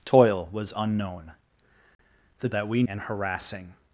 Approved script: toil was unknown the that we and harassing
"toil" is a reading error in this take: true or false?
false